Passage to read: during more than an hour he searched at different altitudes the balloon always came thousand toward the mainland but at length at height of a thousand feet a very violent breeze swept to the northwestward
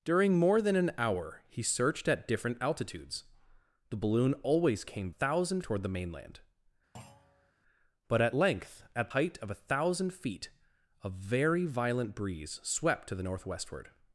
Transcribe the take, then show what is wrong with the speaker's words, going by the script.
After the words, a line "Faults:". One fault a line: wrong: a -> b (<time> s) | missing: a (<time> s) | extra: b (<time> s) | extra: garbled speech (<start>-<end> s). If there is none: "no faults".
during more than an hour he searched at different altitudes the balloon always came thousand toward the mainland but at length at height of a thousand feet a very violent breeze swept to the northwestward
Faults:
no faults